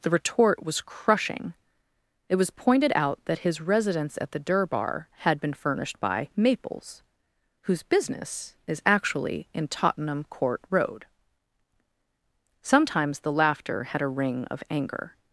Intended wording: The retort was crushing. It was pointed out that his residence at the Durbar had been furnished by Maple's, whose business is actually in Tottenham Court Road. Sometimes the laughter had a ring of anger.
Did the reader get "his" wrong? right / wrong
right